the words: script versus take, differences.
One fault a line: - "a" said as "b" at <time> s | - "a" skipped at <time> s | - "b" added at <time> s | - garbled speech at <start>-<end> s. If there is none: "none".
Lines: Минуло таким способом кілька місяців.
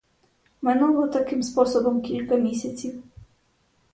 none